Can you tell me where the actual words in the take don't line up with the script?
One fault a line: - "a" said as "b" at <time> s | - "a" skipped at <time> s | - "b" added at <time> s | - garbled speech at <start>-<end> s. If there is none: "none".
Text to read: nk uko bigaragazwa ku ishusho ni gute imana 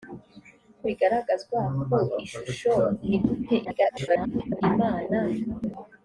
- "uko" skipped at 0.8 s
- garbled speech at 3.6-4.6 s